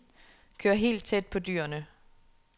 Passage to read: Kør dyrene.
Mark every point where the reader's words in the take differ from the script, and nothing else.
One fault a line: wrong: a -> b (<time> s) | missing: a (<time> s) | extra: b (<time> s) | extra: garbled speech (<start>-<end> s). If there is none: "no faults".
extra: helt tæt på (0.7 s)